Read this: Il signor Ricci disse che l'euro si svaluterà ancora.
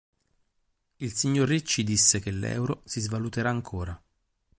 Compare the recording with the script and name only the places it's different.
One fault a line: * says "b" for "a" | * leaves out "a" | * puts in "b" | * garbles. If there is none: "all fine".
all fine